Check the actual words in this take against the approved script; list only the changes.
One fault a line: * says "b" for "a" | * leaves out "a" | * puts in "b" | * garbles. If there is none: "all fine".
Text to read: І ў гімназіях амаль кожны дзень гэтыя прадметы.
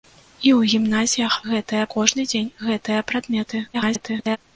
* says "гэтыя" for "амаль"
* garbles